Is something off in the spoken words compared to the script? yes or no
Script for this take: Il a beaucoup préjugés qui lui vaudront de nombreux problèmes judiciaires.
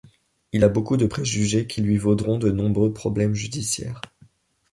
yes